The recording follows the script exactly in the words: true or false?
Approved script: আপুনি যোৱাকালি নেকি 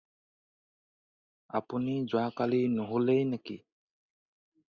false